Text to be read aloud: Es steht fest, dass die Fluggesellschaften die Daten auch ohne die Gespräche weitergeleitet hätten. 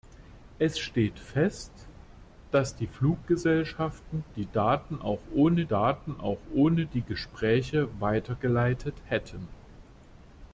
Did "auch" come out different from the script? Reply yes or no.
no